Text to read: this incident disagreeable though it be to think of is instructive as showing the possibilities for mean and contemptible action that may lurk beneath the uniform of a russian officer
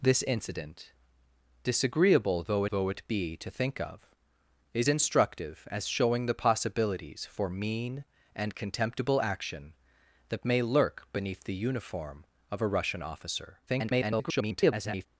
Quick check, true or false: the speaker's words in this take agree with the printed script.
false